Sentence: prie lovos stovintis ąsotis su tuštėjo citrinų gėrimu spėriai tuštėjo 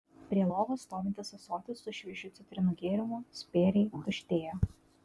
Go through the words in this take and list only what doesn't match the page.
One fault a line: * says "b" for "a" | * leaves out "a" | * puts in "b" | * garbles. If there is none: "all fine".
* says "šviežiu" for "tuštėjo"